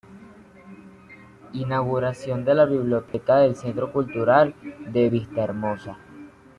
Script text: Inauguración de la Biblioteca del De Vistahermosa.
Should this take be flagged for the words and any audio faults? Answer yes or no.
yes